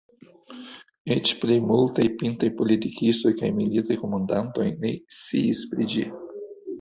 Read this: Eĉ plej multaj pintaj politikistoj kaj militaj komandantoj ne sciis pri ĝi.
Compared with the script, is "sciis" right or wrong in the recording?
right